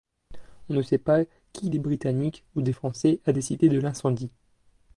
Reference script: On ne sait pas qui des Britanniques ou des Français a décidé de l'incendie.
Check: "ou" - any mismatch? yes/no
no